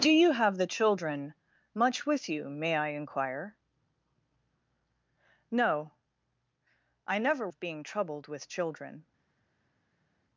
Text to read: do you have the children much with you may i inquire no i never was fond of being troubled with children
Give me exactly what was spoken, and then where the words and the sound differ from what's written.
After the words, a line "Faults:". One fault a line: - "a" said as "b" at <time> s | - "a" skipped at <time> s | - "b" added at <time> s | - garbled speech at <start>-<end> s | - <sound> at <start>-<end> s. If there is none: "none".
do you have the children much with you may i inquire no i never of being troubled with children
Faults:
- "was fond" skipped at 7.5 s